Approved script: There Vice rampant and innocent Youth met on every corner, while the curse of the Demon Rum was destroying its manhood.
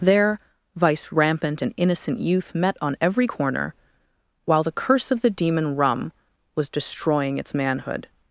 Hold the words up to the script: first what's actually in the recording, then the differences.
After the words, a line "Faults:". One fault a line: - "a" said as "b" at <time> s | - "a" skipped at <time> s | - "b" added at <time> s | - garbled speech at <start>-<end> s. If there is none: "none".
There Vice rampant and innocent Youth met on every corner, while the curse of the Demon Rum was destroying its manhood.
Faults:
none